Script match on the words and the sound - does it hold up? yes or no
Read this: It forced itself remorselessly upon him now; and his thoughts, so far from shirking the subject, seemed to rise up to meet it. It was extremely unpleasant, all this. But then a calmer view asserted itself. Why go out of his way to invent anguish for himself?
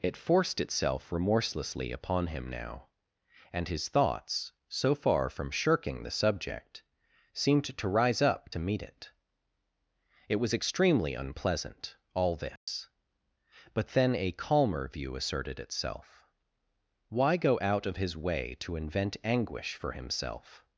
no